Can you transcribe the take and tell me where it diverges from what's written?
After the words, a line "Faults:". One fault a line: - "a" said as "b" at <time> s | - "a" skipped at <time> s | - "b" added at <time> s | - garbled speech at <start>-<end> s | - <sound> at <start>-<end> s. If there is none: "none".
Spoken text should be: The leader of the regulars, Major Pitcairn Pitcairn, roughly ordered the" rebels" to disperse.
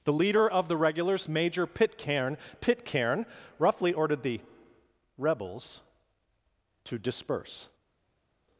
The leader of the regulars, Major Pitcairn Pitcairn, roughly ordered the" rebels" to disperse.
Faults:
none